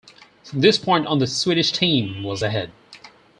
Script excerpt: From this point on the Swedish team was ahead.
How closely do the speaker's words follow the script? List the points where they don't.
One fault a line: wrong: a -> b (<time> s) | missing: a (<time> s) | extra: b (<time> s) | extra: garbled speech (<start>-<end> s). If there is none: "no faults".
no faults